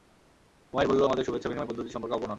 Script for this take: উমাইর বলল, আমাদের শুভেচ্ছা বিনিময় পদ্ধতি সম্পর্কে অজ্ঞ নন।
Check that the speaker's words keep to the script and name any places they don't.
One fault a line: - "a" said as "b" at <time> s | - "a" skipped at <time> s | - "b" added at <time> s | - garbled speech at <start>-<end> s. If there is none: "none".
none